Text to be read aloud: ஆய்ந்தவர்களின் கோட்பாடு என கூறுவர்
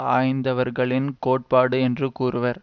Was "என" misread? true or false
true